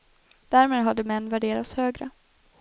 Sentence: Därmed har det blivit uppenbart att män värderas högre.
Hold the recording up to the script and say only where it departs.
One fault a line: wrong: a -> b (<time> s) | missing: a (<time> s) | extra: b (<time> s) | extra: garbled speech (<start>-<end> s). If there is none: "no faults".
missing: blivit uppenbart att (1.0 s)